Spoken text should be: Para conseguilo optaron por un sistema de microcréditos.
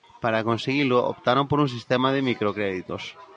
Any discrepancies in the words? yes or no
no